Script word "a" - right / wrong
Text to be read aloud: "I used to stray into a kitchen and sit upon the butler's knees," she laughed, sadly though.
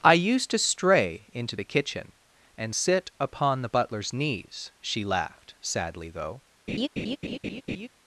wrong